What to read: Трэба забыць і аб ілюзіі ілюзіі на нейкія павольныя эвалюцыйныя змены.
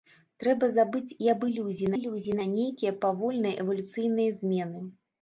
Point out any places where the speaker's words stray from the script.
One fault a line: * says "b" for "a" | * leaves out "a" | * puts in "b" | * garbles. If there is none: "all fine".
all fine